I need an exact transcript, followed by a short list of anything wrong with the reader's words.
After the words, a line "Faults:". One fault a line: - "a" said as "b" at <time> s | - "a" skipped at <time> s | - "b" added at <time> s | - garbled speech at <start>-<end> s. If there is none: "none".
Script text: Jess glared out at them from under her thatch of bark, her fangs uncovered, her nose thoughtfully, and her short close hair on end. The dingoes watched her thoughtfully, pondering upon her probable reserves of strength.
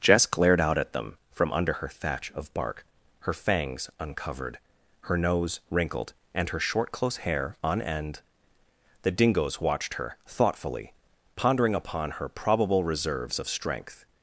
Jess glared out at them from under her thatch of bark, her fangs uncovered, her nose wrinkled, and her short close hair on end. The dingoes watched her thoughtfully, pondering upon her probable reserves of strength.
Faults:
- "thoughtfully" said as "wrinkled" at 5.7 s